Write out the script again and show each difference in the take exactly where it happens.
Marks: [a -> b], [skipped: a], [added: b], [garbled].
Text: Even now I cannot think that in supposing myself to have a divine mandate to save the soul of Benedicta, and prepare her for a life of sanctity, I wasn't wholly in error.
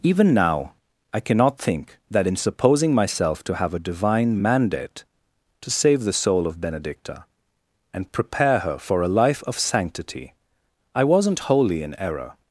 Even now I cannot think that in supposing myself to have a divine mandate to save the soul of Benedicta, and prepare her for a life of sanctity, I wasn't wholly in error.